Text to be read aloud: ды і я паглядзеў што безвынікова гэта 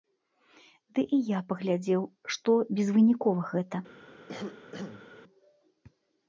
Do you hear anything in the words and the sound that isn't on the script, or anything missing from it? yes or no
yes